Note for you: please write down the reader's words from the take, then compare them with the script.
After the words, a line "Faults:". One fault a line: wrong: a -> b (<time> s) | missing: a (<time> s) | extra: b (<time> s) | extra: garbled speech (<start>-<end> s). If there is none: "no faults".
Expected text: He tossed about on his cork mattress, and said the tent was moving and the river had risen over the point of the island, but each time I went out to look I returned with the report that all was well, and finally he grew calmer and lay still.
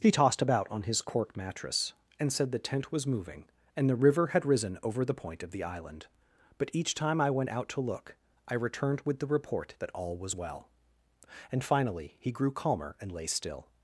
He tossed about on his cork mattress, and said the tent was moving and the river had risen over the point of the island, but each time I went out to look I returned with the report that all was well, and finally he grew calmer and lay still.
Faults:
no faults